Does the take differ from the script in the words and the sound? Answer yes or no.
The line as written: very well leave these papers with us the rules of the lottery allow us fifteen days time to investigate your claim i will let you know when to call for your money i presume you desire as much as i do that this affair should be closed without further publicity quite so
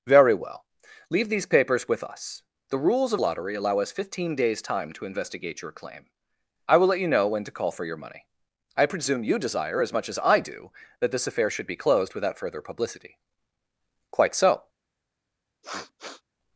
yes